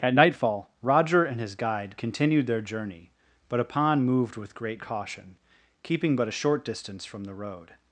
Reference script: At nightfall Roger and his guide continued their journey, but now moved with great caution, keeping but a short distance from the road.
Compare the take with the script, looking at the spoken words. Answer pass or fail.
fail